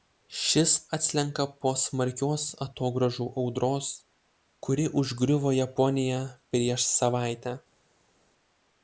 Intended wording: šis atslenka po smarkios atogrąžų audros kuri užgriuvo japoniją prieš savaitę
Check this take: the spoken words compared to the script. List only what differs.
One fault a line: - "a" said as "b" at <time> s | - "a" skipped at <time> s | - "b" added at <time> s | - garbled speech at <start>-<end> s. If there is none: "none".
none